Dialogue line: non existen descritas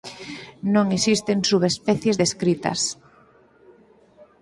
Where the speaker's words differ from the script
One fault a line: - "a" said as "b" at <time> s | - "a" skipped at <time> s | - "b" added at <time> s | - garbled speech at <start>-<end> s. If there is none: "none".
- "subespecies" added at 1.5 s